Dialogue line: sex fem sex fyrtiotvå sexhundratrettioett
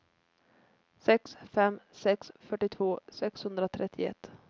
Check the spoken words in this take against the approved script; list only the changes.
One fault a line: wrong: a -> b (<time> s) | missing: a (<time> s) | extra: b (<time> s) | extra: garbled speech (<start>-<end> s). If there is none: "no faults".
no faults